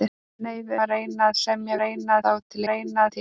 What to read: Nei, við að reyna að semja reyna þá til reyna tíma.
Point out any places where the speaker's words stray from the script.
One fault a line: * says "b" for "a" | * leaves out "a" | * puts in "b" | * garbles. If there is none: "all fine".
all fine